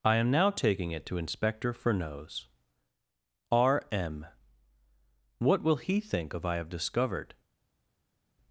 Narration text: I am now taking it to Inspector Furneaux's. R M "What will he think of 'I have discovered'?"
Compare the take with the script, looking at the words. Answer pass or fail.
pass